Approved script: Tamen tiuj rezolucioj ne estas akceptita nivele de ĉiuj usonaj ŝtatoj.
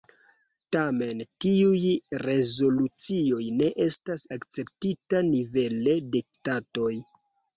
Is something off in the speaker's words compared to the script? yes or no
yes